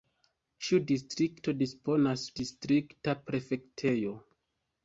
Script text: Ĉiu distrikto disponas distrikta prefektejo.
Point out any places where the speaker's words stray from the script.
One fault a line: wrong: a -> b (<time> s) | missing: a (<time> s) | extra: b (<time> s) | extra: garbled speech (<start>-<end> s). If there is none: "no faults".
no faults